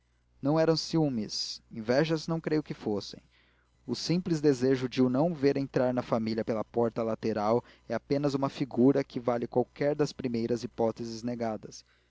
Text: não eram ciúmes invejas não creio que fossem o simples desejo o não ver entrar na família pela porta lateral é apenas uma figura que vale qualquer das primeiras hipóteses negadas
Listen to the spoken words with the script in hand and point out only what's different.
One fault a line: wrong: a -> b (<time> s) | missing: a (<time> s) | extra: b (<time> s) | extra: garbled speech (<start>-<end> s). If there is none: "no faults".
extra: de (4.9 s)